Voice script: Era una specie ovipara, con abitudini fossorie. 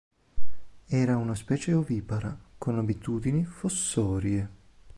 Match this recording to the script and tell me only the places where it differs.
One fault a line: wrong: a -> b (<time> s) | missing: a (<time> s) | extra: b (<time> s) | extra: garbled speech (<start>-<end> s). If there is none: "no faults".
no faults